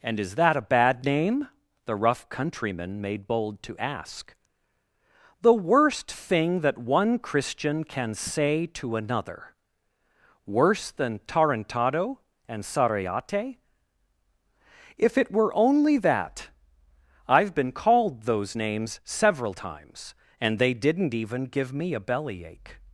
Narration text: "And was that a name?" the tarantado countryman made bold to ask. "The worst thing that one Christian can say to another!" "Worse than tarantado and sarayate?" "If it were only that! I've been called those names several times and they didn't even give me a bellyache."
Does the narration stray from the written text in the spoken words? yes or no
yes